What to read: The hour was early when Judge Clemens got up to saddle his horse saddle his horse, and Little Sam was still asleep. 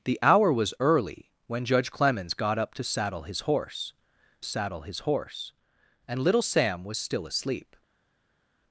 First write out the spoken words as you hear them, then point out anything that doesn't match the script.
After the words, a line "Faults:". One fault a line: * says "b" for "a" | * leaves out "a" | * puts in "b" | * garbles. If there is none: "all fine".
The hour was early when Judge Clemens got up to saddle his horse saddle his horse, and Little Sam was still asleep.
Faults:
all fine